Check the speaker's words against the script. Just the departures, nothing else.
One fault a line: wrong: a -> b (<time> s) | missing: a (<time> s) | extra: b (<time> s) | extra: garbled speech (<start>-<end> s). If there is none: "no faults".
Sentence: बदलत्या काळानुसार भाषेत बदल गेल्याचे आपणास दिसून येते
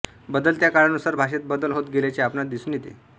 extra: होत (1.7 s)